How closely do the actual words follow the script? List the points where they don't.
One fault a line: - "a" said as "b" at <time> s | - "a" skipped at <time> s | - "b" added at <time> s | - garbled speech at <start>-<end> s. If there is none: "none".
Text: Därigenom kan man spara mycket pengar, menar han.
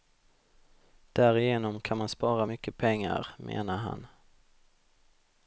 none